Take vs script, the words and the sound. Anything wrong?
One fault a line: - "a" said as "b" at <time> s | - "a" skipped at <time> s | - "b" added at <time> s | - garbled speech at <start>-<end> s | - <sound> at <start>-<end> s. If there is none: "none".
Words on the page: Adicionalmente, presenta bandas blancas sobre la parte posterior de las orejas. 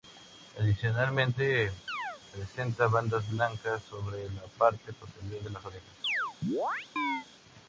- chirp at 1.9-2.2 s
- chirp at 6.0-7.3 s